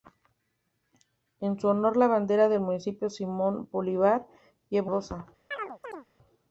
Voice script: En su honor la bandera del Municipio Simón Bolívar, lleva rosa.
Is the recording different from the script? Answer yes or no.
no